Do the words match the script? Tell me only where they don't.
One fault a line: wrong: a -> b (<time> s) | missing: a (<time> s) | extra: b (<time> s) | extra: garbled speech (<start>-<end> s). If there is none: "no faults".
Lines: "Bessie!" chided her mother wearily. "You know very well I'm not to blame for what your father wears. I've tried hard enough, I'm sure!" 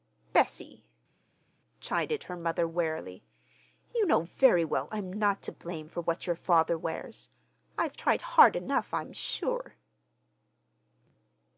no faults